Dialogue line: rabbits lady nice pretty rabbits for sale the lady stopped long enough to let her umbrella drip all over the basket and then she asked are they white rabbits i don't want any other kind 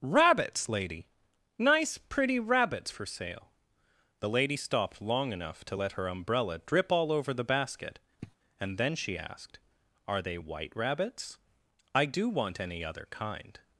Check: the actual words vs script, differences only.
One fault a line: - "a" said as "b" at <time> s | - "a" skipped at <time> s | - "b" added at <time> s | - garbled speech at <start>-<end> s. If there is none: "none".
- "don't" said as "do" at 12.0 s